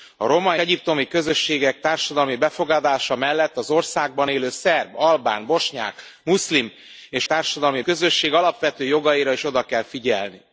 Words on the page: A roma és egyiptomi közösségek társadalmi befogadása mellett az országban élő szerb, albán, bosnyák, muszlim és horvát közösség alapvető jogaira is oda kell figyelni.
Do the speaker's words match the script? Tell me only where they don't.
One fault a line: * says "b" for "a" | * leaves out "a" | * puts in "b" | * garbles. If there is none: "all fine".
* leaves out "és"
* says "társadalmi" for "horvát"